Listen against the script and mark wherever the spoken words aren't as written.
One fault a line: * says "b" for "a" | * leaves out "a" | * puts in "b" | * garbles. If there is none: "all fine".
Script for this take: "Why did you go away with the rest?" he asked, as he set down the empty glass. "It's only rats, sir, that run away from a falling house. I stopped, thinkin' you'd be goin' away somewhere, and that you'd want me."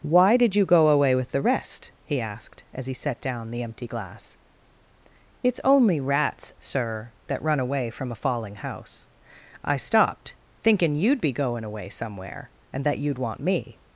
all fine